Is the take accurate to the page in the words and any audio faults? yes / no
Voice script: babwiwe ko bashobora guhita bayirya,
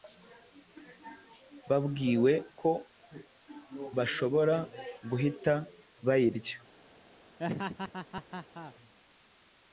no